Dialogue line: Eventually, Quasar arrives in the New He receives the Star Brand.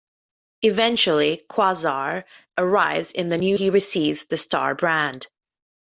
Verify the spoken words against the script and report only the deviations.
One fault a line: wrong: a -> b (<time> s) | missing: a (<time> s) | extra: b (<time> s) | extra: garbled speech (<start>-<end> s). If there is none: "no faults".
no faults